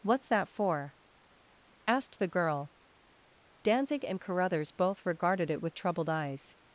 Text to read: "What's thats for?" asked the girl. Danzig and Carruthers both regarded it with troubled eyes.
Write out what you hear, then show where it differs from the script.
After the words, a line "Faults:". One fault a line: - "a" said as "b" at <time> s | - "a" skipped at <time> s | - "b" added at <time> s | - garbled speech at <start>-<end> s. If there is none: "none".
"What's that for?" asked the girl. Danzig and Carruthers both regarded it with troubled eyes.
Faults:
- "thats" said as "that" at 0.3 s